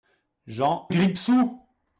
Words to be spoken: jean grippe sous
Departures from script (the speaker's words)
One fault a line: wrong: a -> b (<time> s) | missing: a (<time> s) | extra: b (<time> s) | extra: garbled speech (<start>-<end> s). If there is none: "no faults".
no faults